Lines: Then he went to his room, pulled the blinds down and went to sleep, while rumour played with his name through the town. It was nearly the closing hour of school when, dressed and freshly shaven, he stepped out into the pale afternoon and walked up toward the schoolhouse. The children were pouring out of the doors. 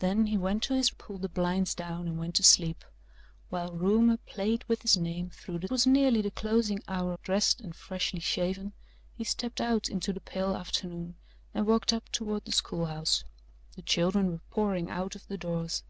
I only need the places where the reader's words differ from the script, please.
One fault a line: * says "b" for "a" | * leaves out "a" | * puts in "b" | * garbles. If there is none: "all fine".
* leaves out "room"
* leaves out "town It"
* leaves out "of school when"